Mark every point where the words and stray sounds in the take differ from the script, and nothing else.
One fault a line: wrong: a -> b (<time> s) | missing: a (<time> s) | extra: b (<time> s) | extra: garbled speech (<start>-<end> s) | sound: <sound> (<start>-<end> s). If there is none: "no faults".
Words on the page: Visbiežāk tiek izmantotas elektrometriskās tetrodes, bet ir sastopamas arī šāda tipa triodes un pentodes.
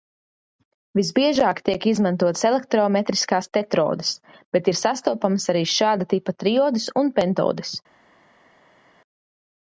no faults